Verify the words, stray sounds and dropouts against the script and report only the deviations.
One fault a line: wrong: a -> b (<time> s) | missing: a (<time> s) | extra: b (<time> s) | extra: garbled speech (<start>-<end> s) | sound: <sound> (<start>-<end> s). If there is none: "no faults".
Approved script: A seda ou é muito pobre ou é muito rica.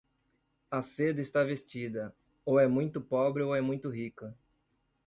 extra: está vestida (1.2 s)